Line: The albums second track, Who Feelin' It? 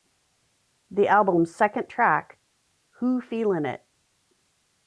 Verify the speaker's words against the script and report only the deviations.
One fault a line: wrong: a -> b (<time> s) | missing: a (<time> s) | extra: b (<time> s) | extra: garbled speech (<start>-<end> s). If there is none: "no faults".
no faults